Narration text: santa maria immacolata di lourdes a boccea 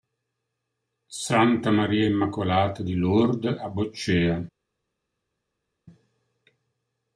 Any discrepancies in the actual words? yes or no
no